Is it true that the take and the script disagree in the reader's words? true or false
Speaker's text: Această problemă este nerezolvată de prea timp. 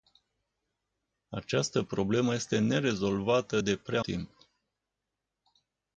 false